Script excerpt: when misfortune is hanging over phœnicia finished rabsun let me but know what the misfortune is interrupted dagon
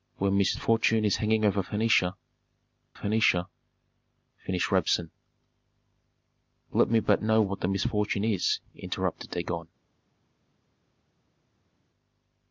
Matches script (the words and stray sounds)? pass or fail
fail